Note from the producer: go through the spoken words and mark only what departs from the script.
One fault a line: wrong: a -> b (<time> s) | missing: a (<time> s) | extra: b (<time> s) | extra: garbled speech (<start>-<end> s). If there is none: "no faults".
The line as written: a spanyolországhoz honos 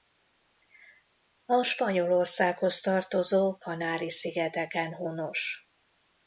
extra: tartozó kanári szigeteken (2.8 s)